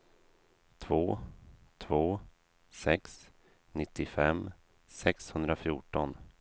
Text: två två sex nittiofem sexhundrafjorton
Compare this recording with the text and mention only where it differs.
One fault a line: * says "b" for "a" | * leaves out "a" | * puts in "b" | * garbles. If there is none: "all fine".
all fine